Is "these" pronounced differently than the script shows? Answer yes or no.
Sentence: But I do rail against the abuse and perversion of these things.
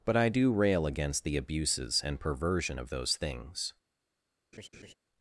yes